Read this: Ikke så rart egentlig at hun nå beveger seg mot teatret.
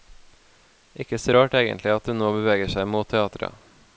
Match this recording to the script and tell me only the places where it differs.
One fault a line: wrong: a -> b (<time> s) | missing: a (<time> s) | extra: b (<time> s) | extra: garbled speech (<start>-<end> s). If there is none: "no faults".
no faults